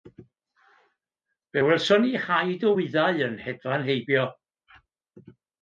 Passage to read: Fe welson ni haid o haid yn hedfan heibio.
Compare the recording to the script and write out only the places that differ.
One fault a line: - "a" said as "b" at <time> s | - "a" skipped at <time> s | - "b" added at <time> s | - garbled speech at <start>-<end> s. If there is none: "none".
- "haid" said as "wyddau" at 2.7 s